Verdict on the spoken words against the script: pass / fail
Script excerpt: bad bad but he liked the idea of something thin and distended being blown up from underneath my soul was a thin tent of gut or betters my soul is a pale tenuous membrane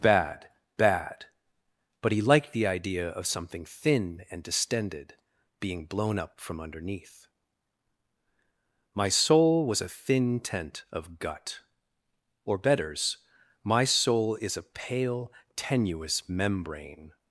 pass